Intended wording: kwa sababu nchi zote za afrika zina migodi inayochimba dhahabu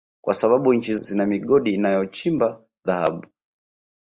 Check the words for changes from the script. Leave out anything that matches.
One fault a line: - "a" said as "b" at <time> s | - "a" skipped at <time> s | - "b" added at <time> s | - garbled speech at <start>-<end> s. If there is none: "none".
- "zote za afrika" skipped at 0.9 s